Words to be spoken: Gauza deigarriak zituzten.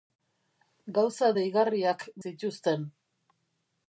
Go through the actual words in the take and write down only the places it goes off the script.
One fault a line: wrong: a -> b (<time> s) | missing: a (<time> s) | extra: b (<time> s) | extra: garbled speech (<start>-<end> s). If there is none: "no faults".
no faults